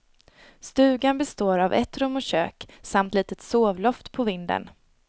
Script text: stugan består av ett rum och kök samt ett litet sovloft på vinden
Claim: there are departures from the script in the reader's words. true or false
true